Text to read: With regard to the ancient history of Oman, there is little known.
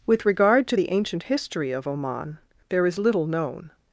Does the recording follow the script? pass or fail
pass